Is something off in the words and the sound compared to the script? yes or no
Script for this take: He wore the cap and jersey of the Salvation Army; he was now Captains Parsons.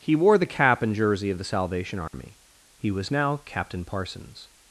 yes